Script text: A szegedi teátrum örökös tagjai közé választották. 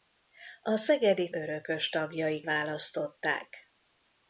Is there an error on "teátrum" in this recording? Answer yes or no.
yes